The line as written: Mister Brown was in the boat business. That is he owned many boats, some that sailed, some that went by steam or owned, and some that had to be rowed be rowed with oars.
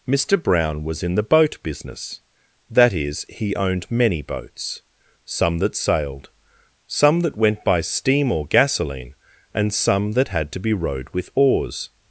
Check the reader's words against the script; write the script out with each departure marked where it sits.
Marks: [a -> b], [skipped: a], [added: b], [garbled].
Mister Brown was in the boat business. That is he owned many boats, some that sailed, some that went by steam or [owned, -> gasoline] and some that had to be rowed [skipped: be rowed] with oars.